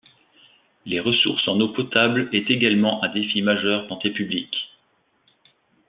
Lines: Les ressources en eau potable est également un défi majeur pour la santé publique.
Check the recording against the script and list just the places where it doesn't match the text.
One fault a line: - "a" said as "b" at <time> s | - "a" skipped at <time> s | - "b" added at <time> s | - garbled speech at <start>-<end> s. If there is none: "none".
- "pour la" skipped at 3.9 s